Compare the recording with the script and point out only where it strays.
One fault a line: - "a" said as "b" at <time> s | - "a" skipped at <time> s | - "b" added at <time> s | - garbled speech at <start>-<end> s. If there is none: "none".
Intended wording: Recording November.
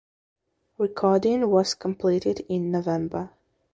- "was completed in" added at 1.5 s